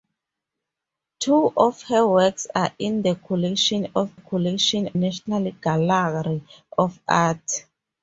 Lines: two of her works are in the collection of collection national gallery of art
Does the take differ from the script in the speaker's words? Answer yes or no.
no